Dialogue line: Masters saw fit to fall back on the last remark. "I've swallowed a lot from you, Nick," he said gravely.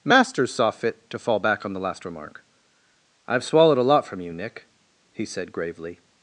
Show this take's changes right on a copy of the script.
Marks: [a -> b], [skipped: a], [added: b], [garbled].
Masters saw fit to fall back on the last remark. "I've swallowed a lot from you, Nick," he said gravely.